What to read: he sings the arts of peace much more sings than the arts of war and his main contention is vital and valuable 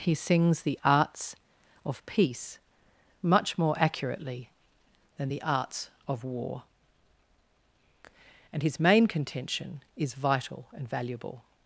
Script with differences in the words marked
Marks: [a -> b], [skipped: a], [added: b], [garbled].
he sings the arts of peace much more [sings -> accurately] than the arts of war and his main contention is vital and valuable